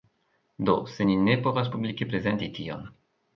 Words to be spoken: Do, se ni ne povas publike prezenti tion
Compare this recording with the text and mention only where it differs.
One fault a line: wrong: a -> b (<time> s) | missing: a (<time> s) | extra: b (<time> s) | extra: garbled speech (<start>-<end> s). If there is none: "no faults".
no faults